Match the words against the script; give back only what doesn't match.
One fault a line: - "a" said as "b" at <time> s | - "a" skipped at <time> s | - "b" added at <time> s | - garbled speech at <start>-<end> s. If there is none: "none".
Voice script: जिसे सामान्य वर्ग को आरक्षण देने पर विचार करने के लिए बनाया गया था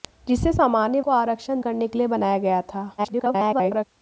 - "वर्ग" skipped at 1.0 s
- "देने पर विचार" skipped at 1.6 s
- garbled speech at 3.0-3.9 s